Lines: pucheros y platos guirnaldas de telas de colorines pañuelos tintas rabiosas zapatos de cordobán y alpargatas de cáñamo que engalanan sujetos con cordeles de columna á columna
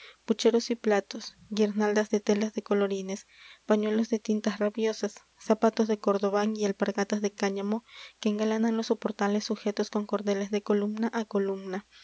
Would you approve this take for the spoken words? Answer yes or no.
no